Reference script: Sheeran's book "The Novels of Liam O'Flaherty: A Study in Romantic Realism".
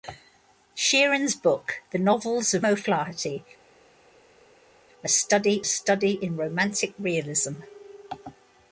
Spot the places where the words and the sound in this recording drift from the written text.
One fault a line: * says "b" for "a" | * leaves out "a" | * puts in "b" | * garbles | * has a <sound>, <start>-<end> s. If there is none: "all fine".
* leaves out "Liam"
* puts in "Study"